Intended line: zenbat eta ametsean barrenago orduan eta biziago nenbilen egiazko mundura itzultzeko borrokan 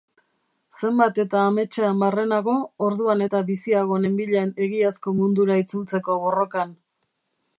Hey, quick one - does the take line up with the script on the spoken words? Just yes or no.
yes